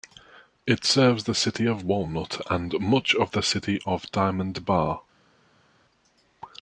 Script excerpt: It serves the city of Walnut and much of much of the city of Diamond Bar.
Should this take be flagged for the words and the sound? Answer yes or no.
yes